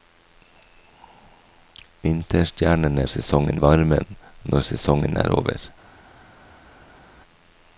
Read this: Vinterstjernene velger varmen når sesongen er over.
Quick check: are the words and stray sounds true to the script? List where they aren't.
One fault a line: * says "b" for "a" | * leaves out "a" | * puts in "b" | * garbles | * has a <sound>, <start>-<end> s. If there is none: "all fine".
* says "sesongen" for "velger"